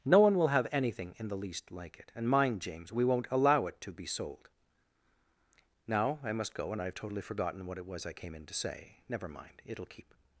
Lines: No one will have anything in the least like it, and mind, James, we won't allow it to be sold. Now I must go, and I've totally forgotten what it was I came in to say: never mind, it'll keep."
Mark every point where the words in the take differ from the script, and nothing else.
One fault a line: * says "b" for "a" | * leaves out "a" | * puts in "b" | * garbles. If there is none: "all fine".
all fine